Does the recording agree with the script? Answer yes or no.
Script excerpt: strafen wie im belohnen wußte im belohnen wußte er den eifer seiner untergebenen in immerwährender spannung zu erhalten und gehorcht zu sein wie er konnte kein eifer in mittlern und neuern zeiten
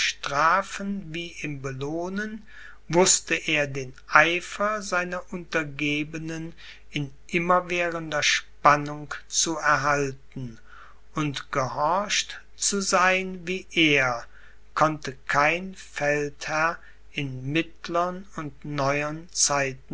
no